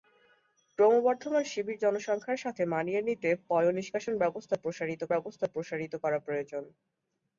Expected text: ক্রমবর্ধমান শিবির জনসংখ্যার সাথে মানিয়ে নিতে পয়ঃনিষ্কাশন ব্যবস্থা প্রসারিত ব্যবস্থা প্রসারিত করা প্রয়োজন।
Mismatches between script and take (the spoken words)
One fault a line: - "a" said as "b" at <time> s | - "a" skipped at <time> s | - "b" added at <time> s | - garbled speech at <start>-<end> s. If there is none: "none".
none